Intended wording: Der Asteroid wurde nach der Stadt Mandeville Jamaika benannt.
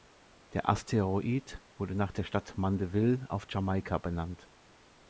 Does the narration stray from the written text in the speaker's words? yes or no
yes